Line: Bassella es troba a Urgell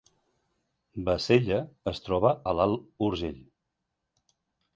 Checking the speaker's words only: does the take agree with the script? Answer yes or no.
no